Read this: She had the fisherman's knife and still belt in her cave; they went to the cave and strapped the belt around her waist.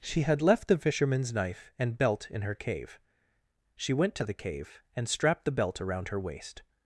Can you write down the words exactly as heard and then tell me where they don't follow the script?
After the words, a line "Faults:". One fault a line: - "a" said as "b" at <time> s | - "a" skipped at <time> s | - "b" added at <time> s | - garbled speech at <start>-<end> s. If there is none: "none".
She had left the fisherman's knife and belt in her cave; she went to the cave and strapped the belt around her waist.
Faults:
- "left" added at 0.4 s
- "still" skipped at 1.9 s
- "they" said as "she" at 3.8 s